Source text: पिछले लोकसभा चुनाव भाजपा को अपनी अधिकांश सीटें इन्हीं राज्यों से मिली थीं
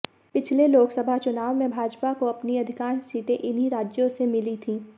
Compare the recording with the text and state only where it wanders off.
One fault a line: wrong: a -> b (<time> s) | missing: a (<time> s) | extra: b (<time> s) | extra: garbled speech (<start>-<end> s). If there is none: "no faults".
extra: में (1.6 s)